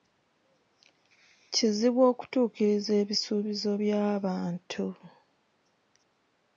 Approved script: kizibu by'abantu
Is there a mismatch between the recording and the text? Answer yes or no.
yes